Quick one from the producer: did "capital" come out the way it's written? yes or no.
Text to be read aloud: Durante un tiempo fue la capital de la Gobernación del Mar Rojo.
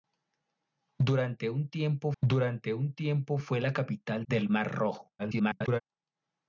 no